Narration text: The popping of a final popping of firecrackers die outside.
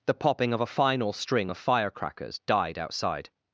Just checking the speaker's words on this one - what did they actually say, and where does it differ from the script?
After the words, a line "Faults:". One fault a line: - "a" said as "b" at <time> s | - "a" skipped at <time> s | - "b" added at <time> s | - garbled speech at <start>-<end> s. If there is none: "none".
The popping of a final string of firecrackers died outside.
Faults:
- "popping" said as "string" at 1.1 s
- "die" said as "died" at 2.5 s